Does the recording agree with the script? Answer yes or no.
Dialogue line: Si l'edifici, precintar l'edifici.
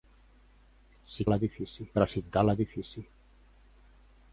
yes